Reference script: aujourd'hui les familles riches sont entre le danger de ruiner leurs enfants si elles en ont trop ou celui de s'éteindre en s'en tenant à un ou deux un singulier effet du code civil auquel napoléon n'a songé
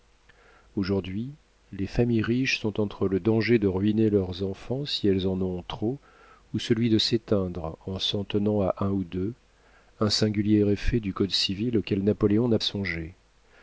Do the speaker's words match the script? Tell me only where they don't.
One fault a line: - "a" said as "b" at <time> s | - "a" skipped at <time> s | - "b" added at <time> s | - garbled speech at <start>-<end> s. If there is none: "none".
none